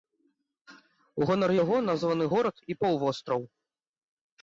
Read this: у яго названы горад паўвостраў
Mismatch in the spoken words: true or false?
true